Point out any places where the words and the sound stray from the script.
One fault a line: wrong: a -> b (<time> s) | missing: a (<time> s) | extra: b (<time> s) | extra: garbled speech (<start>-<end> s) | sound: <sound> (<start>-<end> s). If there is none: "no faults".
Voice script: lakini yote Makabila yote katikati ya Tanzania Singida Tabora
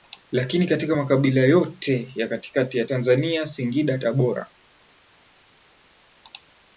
wrong: yote -> katika (0.7 s)
extra: ya (2.2 s)